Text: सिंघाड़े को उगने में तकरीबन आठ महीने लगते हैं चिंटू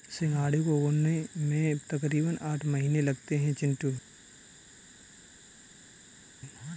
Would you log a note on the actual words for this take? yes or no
no